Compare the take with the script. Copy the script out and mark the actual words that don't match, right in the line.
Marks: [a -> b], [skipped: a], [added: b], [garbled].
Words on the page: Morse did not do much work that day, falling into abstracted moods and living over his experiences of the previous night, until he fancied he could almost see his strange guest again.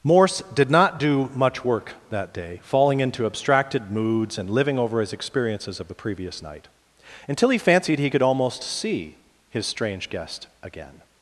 Morse did not do much work that day, falling into abstracted moods and living over his experiences of the previous night, until he fancied he could almost see his strange guest again.